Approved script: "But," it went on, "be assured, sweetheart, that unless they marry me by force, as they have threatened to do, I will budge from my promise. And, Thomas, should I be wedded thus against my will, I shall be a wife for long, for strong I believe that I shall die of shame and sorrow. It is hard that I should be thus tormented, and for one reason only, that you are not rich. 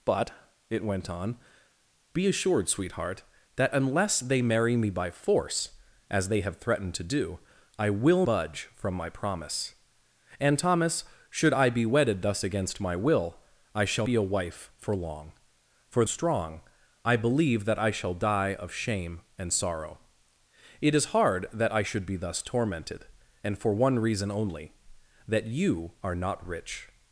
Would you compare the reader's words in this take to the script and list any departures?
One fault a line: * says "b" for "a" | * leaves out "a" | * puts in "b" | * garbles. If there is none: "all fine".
all fine